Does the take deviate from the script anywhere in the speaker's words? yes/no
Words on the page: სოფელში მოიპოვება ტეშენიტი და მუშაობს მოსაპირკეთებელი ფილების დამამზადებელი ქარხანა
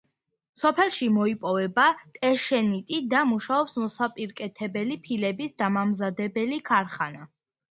no